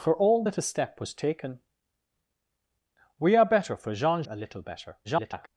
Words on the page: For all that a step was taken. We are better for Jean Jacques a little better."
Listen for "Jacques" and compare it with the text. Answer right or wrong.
wrong